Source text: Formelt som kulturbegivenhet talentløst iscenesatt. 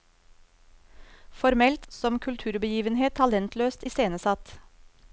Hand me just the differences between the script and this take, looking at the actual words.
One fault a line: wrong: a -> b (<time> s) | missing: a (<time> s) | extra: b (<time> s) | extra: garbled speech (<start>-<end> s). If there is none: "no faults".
no faults